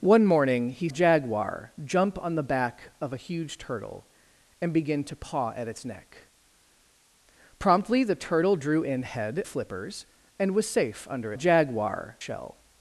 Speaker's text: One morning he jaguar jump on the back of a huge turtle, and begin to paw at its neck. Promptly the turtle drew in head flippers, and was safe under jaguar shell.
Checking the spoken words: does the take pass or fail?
pass